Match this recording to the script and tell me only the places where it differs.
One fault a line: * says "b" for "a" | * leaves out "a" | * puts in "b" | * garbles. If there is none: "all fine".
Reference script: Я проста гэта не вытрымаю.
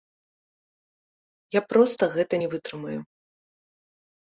all fine